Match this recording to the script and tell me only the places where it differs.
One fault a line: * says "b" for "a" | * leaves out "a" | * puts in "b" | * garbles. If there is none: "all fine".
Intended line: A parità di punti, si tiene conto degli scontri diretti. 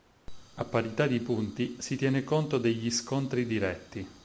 all fine